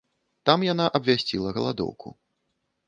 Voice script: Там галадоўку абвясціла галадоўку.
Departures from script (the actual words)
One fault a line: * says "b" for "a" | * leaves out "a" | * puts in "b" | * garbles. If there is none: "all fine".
* says "яна" for "галадоўку"